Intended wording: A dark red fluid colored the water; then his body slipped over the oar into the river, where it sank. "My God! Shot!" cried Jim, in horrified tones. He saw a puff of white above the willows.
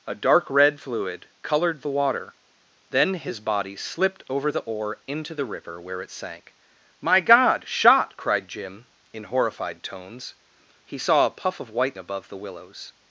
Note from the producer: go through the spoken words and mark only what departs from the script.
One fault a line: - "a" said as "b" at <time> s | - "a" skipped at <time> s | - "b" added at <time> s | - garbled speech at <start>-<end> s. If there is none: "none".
none